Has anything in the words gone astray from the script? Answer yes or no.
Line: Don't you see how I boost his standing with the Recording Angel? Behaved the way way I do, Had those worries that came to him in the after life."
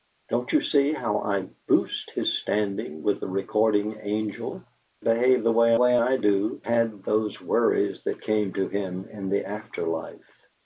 no